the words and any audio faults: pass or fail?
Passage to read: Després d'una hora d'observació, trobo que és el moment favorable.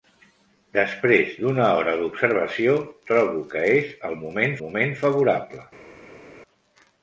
fail